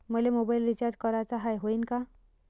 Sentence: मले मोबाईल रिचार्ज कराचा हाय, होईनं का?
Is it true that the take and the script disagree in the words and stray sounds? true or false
false